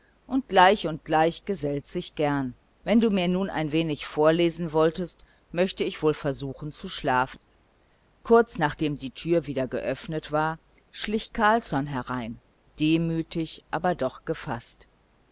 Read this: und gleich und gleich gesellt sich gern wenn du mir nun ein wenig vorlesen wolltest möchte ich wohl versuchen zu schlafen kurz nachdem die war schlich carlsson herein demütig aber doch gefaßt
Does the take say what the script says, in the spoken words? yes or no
no